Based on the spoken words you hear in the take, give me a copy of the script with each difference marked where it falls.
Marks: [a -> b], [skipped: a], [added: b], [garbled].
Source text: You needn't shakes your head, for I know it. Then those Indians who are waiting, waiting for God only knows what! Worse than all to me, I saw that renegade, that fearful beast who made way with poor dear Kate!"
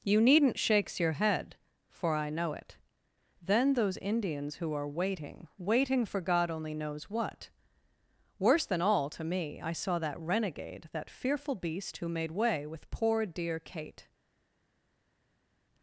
You needn't shakes your head, for I know it. Then those Indians who are waiting, waiting for God only knows what! Worse than all to me, I saw that renegade, that fearful beast who made way with poor dear Kate!"